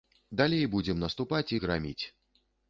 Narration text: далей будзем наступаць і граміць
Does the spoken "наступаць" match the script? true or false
true